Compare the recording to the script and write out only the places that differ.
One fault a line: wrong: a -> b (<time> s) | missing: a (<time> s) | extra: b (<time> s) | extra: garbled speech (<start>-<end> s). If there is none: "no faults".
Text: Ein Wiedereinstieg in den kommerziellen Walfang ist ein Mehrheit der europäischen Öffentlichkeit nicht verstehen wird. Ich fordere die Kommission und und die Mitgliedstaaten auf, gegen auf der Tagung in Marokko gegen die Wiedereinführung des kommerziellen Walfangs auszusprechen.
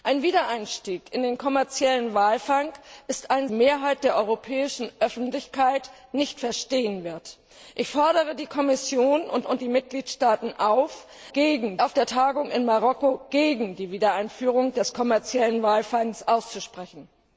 no faults